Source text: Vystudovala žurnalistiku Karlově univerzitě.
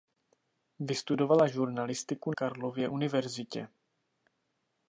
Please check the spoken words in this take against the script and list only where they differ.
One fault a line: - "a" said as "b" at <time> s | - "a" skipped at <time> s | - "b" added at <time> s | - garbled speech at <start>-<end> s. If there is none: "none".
none